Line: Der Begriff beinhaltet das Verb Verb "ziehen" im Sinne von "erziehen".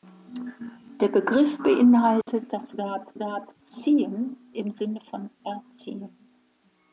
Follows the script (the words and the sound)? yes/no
no